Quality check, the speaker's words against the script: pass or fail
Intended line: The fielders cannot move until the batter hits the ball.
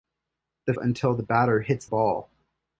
fail